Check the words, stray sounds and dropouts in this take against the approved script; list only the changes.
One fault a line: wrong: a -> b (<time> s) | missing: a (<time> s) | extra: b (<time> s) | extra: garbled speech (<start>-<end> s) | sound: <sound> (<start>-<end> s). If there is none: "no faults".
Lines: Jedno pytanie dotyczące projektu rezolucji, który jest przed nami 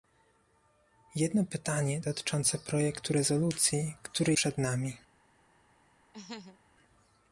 missing: jest (4.3 s)
sound: laugh (6.1-6.6 s)